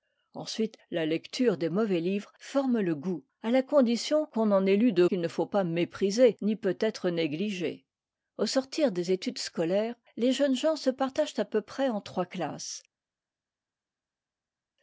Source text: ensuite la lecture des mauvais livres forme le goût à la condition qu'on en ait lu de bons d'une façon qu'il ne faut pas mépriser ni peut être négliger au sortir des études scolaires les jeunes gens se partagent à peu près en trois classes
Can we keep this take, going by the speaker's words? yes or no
no